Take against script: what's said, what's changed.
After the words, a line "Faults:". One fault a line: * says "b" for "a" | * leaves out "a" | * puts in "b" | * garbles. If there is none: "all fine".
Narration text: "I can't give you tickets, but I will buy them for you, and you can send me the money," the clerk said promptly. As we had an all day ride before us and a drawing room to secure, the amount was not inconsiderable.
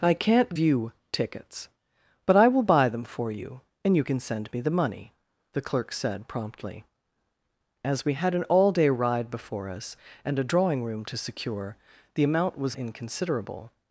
"I can't you tickets, but I will buy them for you, and you can send me the money," the clerk said promptly. As we had an all day ride before us and a drawing room to secure, the amount was inconsiderable.
Faults:
* leaves out "give"
* leaves out "not"